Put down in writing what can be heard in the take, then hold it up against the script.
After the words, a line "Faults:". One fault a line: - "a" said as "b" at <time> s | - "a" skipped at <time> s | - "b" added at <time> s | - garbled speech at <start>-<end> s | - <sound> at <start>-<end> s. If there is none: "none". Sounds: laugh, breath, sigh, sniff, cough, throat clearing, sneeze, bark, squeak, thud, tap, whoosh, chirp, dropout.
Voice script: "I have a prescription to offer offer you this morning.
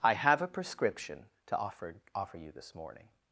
"I have a prescription to offer offer you this morning.
Faults:
none